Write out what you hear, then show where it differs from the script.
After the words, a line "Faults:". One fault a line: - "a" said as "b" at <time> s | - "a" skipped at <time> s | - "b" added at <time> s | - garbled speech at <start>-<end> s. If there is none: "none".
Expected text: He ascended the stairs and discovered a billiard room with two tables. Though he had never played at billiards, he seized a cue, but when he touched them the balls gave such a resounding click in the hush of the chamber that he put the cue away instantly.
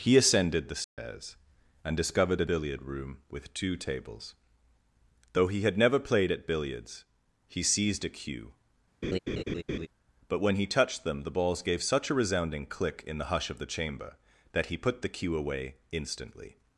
He ascended the stairs and discovered a billiard room with two tables. Though he had never played at billiards, he seized a cue, but when he touched them the balls gave such a resounding click in the hush of the chamber that he put the cue away instantly.
Faults:
none